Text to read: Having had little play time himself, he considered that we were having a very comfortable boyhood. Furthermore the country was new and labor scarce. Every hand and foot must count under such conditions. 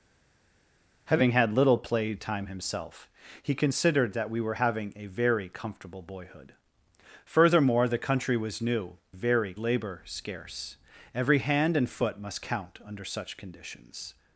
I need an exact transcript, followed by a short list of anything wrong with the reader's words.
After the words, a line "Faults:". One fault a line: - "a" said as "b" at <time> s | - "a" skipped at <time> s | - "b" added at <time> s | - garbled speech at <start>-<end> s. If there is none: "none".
Having had little play time himself, he considered that we were having a very comfortable boyhood. Furthermore the country was new very labor scarce. Every hand and foot must count under such conditions.
Faults:
- "and" said as "very" at 9.1 s